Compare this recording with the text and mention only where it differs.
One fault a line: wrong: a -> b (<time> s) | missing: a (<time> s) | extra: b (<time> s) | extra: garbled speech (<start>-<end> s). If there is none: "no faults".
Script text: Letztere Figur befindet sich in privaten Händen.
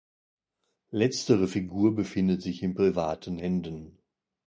no faults